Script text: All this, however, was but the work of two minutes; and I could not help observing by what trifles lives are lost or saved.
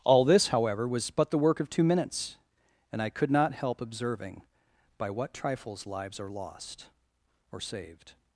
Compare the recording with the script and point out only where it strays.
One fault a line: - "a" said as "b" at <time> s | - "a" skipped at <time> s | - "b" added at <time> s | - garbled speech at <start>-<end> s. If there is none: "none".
none